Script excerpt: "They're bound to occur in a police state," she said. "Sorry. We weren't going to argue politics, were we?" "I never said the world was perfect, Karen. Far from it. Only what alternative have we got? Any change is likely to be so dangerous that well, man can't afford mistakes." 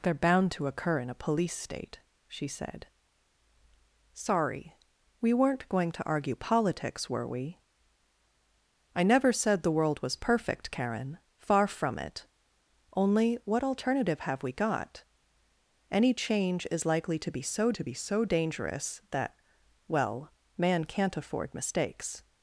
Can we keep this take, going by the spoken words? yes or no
no